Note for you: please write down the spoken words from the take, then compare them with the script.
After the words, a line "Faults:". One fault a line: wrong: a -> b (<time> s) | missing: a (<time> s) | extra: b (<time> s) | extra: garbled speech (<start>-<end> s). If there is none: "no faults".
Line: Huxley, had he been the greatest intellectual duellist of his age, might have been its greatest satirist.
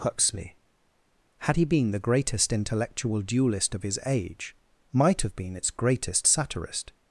Huxley, had he been the greatest intellectual duellist of his age, might have been its greatest satirist.
Faults:
no faults